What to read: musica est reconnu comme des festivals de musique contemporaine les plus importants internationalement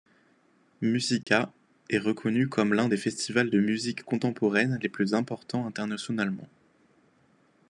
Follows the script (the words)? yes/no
no